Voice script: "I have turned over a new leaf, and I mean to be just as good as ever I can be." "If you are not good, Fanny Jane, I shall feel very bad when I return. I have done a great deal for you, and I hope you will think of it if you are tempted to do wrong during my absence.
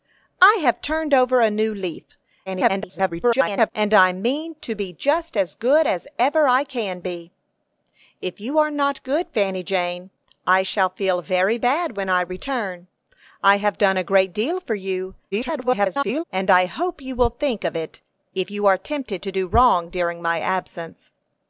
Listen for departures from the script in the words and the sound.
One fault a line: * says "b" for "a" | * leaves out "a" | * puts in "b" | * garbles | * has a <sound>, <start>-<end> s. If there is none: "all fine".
* garbles
* garbles